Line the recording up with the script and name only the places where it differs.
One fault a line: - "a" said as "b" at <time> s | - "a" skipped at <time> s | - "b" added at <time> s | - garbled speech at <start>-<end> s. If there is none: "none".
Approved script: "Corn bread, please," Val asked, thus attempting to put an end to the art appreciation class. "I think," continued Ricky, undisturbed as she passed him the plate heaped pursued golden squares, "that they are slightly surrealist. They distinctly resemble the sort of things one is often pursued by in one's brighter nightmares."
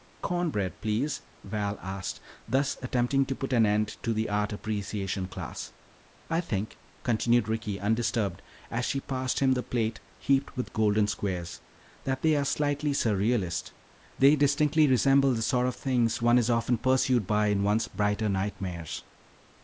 - "pursued" said as "with" at 10.6 s